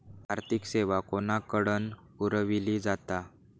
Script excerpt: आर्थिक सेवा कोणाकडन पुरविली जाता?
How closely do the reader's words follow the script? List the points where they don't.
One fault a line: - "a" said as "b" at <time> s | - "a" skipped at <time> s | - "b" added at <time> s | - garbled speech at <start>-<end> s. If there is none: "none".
none